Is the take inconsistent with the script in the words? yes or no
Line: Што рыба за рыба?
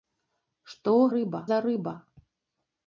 no